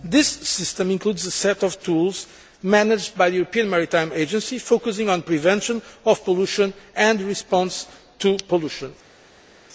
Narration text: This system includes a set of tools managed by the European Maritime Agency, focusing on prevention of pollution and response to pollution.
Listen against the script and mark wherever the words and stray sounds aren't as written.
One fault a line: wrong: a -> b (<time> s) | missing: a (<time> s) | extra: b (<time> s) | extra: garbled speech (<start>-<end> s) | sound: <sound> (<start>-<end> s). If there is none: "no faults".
no faults